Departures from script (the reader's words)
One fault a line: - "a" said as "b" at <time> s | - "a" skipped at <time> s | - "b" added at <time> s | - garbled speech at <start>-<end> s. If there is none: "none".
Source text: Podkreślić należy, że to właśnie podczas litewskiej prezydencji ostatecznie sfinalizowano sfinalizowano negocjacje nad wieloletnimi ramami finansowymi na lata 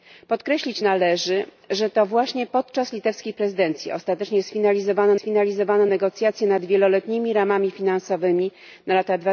none